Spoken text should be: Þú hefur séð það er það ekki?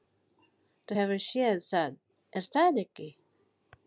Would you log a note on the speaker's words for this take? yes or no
no